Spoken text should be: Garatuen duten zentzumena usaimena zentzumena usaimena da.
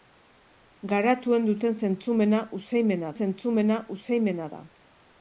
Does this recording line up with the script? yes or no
yes